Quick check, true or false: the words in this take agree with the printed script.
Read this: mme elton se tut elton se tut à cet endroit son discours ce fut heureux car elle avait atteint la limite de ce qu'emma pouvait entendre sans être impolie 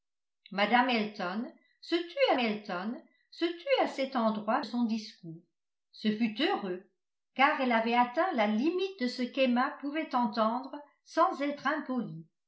true